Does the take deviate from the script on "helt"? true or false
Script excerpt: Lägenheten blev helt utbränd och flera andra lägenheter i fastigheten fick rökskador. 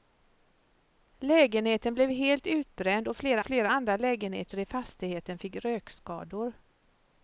false